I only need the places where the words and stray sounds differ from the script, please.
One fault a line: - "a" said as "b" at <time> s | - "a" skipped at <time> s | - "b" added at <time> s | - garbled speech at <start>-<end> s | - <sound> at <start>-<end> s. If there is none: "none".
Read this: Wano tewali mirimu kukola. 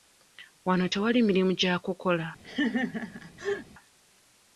- "gya" added at 1.6 s
- laugh at 2.4-3.7 s